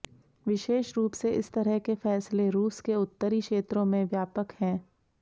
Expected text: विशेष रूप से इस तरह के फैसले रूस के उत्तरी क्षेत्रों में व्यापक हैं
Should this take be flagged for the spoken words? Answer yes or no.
no